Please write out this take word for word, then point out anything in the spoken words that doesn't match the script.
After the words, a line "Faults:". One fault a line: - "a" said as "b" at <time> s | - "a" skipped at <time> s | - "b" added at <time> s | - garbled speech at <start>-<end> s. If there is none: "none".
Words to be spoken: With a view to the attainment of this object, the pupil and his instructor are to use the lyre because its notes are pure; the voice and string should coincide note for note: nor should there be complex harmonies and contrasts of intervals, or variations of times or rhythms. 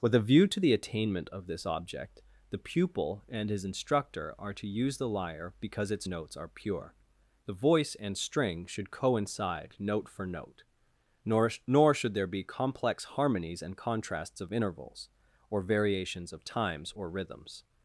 With a view to the attainment of this object, the pupil and his instructor are to use the lyre because its notes are pure; the voice and string should coincide note for note: nor nor should there be complex harmonies and contrasts of intervals, or variations of times or rhythms.
Faults:
- "nor" added at 11.7 s